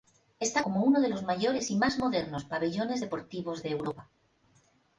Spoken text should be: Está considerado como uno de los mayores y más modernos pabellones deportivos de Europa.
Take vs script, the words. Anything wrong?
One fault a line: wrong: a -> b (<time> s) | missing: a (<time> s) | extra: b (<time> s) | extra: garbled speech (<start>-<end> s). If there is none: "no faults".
missing: considerado (0.6 s)